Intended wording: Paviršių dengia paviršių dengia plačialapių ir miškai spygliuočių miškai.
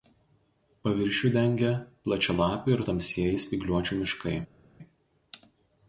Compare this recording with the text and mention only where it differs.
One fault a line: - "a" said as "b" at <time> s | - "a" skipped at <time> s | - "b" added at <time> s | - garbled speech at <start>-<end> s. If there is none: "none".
- "paviršių dengia" skipped at 1.7 s
- "miškai" said as "tamsieji" at 2.9 s